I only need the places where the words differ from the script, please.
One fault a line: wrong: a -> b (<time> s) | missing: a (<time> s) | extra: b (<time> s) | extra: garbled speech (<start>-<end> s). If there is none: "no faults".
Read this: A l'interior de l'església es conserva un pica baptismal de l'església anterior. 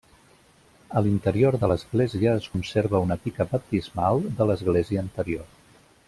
wrong: un -> una (3.1 s)